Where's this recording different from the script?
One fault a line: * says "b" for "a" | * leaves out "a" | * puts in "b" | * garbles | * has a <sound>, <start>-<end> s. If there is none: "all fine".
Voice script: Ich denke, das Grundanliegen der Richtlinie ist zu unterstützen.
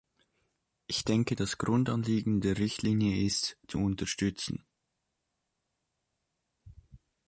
all fine